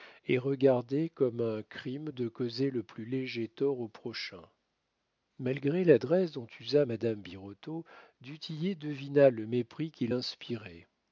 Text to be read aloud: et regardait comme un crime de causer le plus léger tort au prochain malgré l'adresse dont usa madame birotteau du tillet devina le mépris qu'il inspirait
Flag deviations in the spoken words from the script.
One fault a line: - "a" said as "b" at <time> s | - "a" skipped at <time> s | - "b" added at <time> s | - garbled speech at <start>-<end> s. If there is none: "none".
none